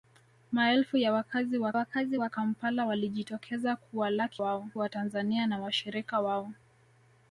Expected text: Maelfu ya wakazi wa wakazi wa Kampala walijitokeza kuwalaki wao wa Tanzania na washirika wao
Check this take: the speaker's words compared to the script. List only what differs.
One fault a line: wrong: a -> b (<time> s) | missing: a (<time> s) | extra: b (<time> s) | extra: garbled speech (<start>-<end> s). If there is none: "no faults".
no faults